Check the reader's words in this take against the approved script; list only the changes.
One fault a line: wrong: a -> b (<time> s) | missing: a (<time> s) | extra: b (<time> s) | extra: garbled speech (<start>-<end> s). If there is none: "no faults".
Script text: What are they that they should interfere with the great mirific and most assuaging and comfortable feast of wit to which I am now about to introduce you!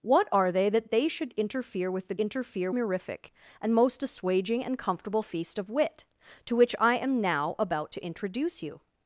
wrong: great -> interfere (2.2 s)